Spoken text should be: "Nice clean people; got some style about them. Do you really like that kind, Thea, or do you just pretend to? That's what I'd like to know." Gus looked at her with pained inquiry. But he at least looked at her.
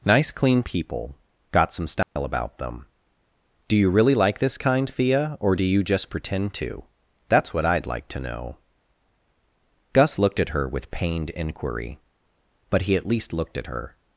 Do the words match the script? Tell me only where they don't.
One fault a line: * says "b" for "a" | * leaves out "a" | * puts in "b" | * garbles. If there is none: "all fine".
* says "this" for "that"